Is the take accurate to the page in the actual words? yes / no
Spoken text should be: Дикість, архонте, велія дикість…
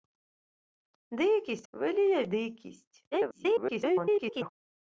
no